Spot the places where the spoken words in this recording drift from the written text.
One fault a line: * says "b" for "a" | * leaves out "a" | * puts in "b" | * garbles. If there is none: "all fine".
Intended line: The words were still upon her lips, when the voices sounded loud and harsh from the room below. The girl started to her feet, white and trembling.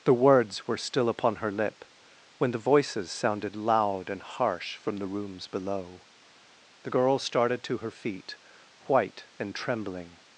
* says "lip" for "lips"
* says "rooms" for "room"